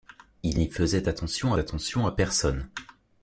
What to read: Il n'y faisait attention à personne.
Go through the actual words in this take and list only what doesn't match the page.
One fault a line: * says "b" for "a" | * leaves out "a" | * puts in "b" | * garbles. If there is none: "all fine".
* puts in "attention"